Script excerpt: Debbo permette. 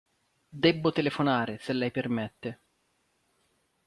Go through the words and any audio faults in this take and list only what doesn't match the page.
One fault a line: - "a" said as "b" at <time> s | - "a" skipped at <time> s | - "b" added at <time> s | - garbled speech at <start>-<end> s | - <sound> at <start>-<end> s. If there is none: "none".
- "telefonare se lei" added at 0.9 s